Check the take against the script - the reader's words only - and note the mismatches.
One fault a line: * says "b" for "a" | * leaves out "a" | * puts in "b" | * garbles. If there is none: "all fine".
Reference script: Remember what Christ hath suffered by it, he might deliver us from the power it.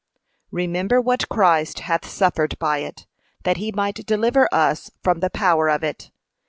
* puts in "that"
* puts in "of"